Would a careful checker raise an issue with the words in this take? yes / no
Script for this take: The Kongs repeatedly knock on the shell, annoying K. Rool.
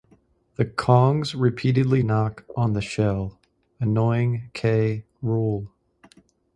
no